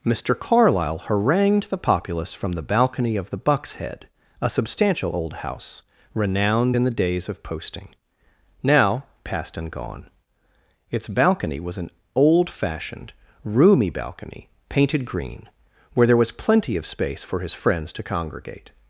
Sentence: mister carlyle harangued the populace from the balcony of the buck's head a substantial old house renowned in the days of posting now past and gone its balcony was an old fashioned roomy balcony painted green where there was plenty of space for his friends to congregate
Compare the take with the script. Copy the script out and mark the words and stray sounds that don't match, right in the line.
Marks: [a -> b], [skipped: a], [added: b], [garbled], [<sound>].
mister carlyle harangued the populace from the balcony of the buck's head a substantial old house renowned in the days of posting now past and gone its balcony was an old fashioned roomy balcony painted green where there was plenty of space for his friends to congregate